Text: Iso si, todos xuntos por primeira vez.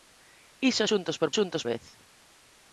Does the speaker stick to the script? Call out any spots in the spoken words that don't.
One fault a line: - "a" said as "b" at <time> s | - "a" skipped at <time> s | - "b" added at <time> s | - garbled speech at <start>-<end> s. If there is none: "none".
- "si todos" skipped at 0.8 s
- "primeira" said as "xuntos" at 1.4 s